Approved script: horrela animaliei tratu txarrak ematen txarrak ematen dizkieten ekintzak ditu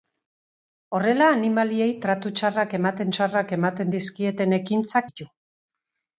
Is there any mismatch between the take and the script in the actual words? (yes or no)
no